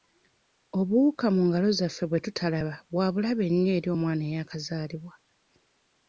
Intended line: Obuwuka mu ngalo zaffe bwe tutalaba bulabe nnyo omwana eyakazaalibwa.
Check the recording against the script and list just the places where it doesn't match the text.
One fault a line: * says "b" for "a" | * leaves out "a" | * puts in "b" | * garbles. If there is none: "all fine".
* puts in "bwa"
* puts in "eri"